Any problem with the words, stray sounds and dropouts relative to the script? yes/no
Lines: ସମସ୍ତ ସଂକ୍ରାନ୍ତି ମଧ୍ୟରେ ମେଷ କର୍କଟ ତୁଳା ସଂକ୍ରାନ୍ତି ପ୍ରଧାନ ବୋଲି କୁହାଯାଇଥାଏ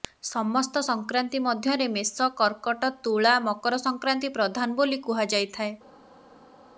yes